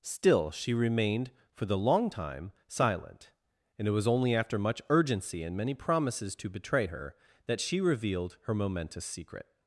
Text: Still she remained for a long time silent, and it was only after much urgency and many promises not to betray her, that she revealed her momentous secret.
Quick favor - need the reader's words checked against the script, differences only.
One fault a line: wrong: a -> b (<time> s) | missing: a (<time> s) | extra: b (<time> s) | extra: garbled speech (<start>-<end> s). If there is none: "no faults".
wrong: a -> the (1.6 s)
missing: not (6.4 s)